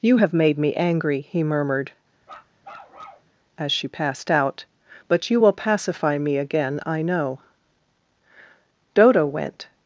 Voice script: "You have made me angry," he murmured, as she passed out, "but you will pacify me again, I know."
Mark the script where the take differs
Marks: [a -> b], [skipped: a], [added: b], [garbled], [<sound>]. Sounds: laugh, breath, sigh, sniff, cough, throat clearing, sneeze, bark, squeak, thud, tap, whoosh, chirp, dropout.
"You have made me angry," he murmured, [bark] as she passed out, "but you will pacify me again, I know." [added: Dodo went]